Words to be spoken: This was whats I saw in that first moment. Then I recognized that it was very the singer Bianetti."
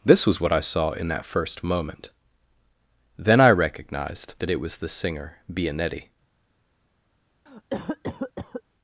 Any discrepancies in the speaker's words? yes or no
yes